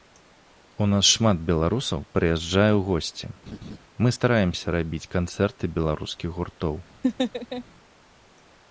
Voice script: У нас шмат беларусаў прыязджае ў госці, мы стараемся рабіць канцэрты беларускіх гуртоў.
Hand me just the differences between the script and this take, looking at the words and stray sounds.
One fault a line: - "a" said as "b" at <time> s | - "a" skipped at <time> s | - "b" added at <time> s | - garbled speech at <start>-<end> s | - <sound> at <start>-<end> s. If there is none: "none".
- laugh at 3.5-3.8 s
- laugh at 7.0-7.6 s